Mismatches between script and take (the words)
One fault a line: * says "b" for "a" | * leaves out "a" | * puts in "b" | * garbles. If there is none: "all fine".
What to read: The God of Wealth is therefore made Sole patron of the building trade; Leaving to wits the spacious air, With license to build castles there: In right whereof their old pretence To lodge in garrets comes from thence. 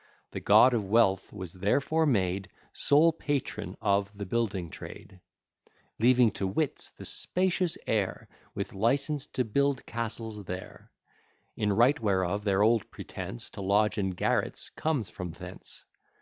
* says "was" for "is"